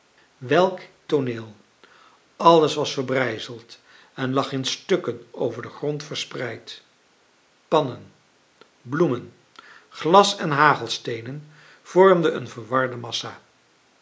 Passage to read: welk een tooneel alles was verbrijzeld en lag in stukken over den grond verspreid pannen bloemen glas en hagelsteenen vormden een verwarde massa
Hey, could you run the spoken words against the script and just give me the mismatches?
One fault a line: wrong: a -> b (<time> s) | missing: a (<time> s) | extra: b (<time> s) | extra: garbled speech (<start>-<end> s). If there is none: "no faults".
missing: een (0.8 s)